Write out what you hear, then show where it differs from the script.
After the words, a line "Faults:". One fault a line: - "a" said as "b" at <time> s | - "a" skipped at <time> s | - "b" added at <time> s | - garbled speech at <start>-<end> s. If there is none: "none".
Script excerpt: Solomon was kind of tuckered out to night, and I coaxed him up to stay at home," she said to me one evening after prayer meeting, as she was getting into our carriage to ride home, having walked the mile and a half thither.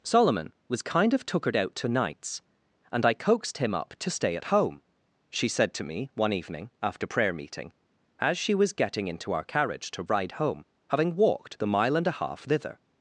Solomon was kind of tuckered out to nights, and I coaxed him up to stay at home," she said to me one evening after prayer meeting, as she was getting into our carriage to ride home, having walked the mile and a half thither.
Faults:
- "night" said as "nights" at 1.9 s